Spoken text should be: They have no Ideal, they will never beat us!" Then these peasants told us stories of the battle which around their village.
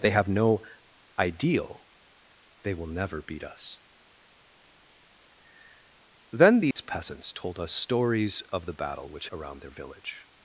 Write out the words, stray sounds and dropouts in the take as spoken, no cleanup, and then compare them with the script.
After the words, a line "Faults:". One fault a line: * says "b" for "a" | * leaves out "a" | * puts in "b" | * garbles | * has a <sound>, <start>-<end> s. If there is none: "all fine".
They have no Ideal, they will never beat us!" Then these peasants told us stories of the battle which around their village.
Faults:
* has a dropout, 6.7-6.8 s